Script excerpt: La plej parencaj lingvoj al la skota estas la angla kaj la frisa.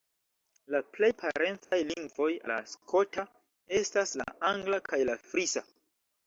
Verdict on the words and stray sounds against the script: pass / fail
fail